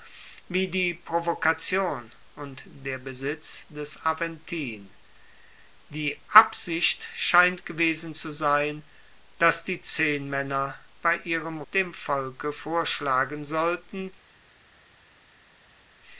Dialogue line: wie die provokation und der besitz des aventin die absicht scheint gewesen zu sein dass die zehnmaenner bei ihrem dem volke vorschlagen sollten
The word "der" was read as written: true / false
true